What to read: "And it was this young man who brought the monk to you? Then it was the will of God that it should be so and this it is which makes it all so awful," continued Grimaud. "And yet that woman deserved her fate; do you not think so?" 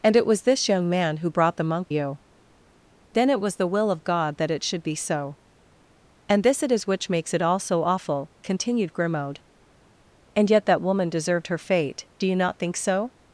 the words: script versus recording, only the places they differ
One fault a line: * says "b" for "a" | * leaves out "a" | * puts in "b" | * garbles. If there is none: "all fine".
* leaves out "to"